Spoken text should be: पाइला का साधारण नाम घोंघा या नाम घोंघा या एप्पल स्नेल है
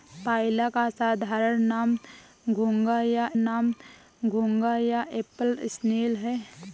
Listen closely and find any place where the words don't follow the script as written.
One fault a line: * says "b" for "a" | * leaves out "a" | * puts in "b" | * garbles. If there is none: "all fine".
all fine